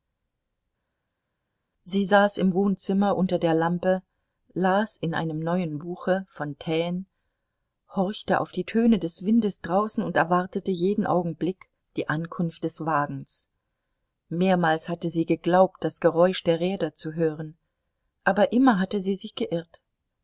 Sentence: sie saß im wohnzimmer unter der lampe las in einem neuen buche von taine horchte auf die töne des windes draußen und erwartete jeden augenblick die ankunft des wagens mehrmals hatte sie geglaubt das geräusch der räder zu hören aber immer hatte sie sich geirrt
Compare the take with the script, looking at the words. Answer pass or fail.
pass